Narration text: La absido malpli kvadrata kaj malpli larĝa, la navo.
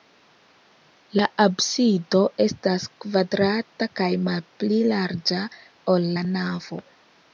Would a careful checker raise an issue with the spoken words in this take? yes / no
yes